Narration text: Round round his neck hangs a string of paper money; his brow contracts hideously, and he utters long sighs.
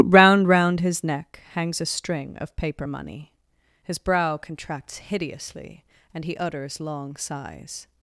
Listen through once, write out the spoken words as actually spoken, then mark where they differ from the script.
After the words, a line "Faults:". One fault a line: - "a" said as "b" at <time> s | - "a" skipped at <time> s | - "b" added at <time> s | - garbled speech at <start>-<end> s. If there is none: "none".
Round round his neck hangs a string of paper money; his brow contracts hideously, and he utters long sighs.
Faults:
none